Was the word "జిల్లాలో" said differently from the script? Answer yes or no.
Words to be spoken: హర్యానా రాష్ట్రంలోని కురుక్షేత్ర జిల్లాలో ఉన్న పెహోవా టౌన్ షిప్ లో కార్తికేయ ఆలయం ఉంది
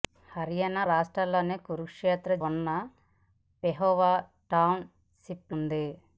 yes